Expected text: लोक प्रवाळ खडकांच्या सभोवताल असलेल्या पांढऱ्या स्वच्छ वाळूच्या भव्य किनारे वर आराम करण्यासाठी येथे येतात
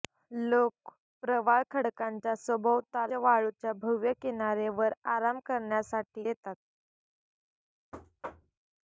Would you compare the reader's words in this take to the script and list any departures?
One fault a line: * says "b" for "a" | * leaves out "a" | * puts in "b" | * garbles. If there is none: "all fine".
* leaves out "असलेल्या पांढऱ्या स्वच्छ"
* leaves out "येथे"